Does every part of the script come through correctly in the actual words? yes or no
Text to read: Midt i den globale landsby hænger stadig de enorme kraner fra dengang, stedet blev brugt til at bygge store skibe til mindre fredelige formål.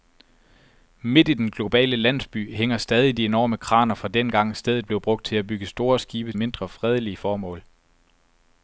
no